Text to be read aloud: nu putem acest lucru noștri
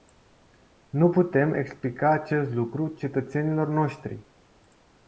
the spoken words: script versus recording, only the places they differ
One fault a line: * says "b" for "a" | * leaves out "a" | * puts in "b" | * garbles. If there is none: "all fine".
* puts in "explica"
* puts in "cetățenilor"